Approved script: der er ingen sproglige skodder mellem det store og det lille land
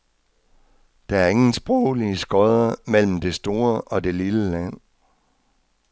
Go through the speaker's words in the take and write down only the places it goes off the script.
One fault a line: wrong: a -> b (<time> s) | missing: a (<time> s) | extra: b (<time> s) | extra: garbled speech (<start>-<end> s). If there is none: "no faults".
no faults